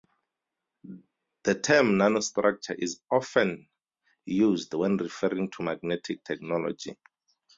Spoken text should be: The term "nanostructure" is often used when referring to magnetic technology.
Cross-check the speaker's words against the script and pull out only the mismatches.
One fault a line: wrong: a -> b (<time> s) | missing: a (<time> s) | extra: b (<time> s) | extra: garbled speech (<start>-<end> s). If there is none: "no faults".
no faults